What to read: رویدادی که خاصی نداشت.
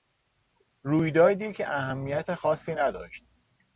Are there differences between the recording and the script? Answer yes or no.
yes